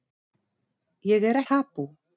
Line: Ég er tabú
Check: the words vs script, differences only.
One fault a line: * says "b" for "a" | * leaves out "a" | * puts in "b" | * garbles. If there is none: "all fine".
all fine